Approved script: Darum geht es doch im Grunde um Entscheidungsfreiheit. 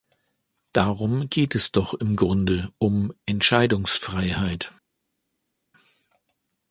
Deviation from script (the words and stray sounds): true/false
false